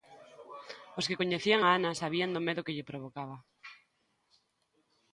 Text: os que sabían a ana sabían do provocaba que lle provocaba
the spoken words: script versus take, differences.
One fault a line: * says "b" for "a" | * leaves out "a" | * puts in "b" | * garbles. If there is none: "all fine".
* says "coñecían" for "sabían"
* says "medo" for "provocaba"